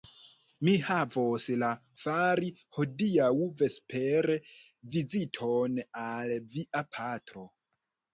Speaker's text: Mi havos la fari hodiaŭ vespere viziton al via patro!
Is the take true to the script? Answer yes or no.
yes